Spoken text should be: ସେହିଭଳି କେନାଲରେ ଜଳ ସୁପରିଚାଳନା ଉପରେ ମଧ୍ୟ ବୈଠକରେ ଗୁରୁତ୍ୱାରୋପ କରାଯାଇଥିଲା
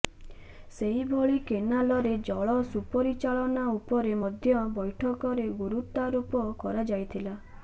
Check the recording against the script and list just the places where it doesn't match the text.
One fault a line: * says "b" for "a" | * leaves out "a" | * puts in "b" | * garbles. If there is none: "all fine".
all fine